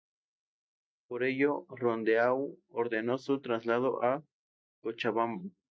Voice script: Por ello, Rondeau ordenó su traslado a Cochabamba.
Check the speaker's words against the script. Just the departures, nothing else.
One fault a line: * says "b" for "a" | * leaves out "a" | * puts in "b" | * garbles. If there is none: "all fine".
all fine